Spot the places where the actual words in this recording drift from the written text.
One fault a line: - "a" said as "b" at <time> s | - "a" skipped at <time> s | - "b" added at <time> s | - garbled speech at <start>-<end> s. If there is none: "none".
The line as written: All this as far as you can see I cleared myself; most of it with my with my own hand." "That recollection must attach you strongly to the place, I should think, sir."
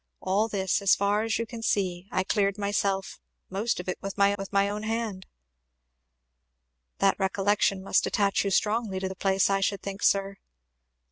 none